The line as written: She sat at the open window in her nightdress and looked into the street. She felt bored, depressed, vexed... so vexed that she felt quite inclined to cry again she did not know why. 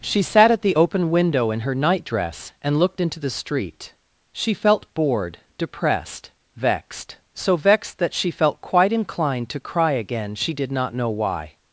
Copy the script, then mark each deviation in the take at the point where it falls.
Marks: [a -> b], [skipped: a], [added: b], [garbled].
She sat at the open window in her nightdress and looked into the street. She felt bored, depressed, vexed... so vexed that she felt quite inclined to cry again she did not know why.